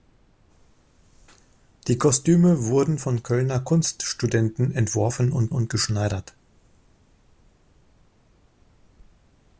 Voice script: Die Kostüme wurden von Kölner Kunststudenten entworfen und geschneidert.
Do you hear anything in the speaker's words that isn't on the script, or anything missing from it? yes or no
yes